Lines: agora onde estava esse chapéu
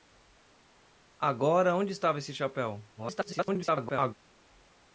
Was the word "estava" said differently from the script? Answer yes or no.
no